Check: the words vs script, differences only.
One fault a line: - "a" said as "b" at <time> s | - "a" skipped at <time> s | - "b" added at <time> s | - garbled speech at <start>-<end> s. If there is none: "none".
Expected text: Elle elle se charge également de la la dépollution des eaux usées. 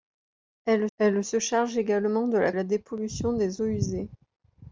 none